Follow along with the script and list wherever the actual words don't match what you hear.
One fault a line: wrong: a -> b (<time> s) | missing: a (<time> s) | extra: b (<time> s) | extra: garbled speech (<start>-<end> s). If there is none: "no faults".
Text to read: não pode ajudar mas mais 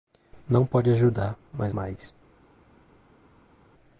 no faults